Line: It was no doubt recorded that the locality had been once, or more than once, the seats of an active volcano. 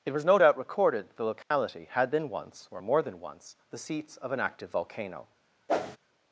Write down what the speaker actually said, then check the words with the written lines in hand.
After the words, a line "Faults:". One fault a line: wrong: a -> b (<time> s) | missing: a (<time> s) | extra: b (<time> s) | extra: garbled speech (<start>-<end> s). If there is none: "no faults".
It was no doubt recorded that the locality had been once, or more than once, the seats of an active volcano.
Faults:
no faults